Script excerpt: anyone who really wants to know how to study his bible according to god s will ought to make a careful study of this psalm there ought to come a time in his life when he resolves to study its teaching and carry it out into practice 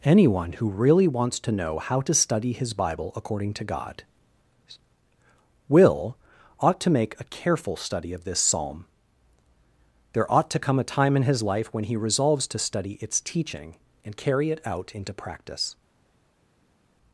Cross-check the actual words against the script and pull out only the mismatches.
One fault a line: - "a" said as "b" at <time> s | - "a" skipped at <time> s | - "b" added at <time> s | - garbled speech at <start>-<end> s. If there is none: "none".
- "s" skipped at 4.0 s